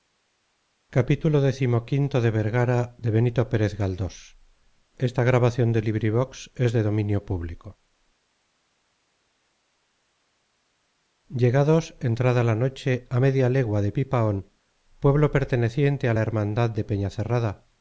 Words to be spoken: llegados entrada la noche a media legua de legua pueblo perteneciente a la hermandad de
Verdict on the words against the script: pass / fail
fail